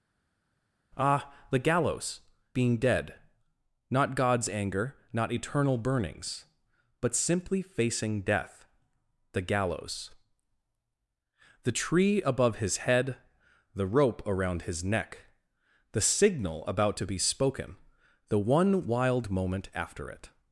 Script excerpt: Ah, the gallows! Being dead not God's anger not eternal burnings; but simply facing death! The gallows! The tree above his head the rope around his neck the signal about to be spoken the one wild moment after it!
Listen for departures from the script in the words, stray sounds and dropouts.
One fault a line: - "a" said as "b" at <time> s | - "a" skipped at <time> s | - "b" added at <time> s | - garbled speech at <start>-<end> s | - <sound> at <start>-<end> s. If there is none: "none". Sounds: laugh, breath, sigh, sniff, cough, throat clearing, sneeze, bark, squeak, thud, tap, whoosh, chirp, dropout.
none